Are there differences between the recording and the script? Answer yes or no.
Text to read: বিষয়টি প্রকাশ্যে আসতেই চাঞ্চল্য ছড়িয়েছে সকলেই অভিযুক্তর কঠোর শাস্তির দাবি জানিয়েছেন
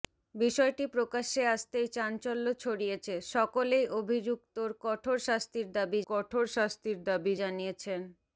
yes